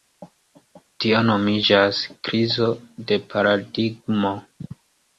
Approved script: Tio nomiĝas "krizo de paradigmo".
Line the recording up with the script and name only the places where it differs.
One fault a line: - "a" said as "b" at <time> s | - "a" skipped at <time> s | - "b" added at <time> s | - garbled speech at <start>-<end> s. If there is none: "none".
none